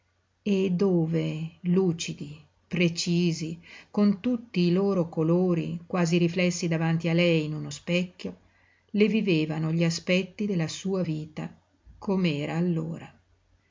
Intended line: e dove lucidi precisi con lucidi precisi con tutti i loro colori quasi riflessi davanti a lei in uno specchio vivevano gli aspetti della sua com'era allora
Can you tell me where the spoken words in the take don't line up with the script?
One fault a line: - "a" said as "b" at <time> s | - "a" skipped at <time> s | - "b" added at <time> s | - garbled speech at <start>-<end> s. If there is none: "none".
- "lucidi precisi con" skipped at 4.2 s
- "le" added at 8.9 s
- "vita" added at 11.0 s